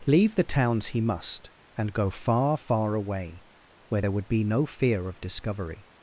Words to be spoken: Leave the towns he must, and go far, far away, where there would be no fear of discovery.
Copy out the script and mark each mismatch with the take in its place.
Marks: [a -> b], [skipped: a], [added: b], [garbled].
Leave the towns he must, and go far, far away, where there would be no fear of discovery.